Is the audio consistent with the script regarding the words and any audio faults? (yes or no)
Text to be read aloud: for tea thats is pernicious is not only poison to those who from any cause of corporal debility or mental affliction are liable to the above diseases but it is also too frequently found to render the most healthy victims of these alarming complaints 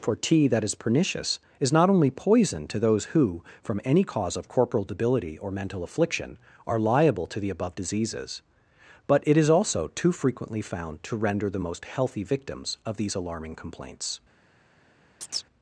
no